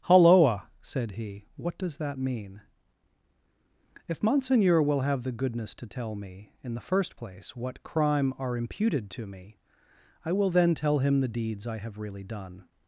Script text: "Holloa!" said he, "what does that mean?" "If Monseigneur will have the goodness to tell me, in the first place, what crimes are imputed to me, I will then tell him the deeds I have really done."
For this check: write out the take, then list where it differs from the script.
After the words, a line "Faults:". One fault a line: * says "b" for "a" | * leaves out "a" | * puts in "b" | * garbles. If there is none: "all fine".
"Holloa!" said he, "what does that mean?" "If Monseigneur will have the goodness to tell me, in the first place, what crime are imputed to me, I will then tell him the deeds I have really done."
Faults:
* says "crime" for "crimes"